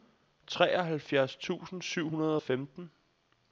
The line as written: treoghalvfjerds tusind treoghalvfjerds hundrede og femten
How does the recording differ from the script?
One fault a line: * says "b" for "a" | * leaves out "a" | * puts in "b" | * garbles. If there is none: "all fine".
* says "syv" for "treoghalvfjerds"